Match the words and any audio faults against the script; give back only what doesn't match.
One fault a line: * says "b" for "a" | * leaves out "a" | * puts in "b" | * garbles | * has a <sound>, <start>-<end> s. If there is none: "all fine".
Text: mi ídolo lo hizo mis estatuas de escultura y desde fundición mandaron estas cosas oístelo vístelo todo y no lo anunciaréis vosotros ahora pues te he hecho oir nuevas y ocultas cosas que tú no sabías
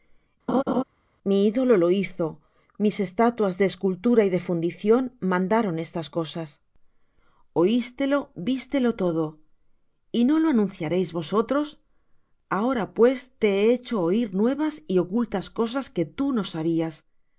* has a laugh, 0.5-0.8 s
* says "de" for "desde"